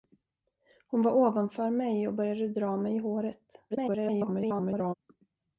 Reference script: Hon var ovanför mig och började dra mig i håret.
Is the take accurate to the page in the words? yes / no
no